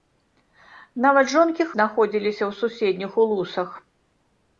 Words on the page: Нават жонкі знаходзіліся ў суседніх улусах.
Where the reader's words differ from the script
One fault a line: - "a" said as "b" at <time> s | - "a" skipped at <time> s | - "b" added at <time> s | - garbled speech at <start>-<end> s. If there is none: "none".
none